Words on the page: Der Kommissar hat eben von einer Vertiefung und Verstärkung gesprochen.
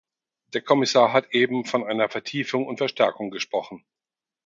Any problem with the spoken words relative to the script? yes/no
no